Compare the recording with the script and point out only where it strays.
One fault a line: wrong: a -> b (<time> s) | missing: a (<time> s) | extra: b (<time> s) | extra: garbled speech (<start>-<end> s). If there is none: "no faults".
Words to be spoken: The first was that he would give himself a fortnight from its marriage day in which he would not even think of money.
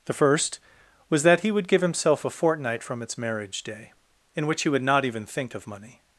no faults